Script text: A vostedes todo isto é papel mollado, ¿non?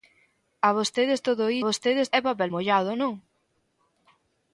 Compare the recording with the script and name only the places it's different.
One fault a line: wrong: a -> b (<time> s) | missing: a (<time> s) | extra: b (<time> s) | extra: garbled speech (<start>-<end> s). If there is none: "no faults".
wrong: isto -> vostedes (1.7 s)